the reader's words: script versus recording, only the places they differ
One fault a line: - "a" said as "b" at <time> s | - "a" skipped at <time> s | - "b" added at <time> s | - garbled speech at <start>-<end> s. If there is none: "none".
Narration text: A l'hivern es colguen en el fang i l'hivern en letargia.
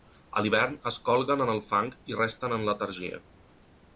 - "l'hivern" said as "resten" at 2.2 s